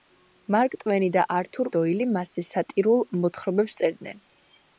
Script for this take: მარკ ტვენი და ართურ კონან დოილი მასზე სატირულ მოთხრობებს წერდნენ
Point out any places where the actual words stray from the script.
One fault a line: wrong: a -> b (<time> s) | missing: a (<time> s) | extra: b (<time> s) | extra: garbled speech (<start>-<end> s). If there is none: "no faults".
missing: კონან (1.7 s)